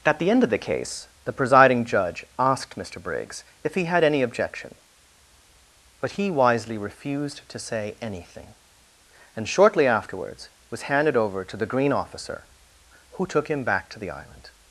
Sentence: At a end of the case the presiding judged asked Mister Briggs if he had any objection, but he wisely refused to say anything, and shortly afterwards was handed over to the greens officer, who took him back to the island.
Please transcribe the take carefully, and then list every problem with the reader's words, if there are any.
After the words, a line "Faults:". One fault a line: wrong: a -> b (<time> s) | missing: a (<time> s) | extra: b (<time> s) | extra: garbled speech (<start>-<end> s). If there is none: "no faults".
At the end of the case the presiding judge asked Mister Briggs if he had any objection, but he wisely refused to say anything, and shortly afterwards was handed over to the green officer, who took him back to the island.
Faults:
wrong: a -> the (0.2 s)
wrong: judged -> judge (1.9 s)
wrong: greens -> green (11.7 s)